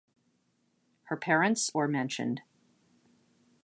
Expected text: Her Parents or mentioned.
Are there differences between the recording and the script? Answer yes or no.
no